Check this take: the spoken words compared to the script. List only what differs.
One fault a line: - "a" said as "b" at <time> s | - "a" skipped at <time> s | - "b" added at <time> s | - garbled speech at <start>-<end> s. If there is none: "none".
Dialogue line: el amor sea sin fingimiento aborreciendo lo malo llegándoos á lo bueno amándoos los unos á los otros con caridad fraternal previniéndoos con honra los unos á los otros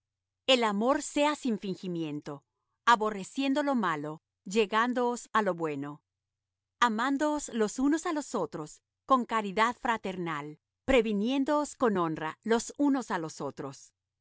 none